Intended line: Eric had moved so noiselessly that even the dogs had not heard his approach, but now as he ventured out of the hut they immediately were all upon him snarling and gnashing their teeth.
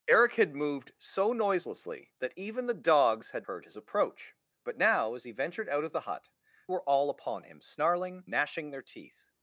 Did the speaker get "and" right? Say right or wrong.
wrong